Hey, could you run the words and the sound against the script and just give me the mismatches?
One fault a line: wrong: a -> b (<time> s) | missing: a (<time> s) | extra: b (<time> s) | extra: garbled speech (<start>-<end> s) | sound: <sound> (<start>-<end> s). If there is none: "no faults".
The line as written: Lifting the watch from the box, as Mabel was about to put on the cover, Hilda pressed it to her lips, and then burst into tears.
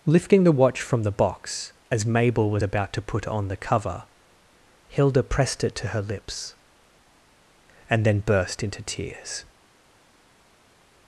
no faults